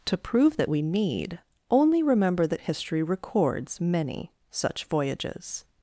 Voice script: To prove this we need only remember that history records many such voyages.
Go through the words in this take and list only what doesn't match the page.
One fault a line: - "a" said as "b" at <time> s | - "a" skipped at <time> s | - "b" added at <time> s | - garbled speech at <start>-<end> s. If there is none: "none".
- "this" said as "that" at 0.6 s